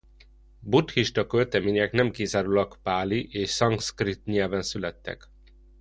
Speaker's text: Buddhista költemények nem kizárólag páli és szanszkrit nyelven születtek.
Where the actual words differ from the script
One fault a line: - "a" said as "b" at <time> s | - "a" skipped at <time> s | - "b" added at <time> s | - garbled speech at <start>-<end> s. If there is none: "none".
none